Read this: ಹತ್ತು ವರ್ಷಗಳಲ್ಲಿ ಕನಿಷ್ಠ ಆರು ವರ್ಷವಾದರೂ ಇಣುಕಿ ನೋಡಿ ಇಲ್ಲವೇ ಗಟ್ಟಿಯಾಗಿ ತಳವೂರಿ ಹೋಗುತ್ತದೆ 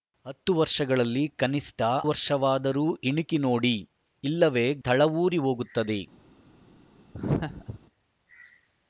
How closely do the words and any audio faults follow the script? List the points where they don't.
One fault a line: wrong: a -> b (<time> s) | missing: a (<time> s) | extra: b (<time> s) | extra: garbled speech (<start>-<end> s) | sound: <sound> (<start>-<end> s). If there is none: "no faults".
missing: ಆರು (1.8 s)
missing: ಗಟ್ಟಿಯಾಗಿ (4.7 s)
sound: laugh (7.1-7.8 s)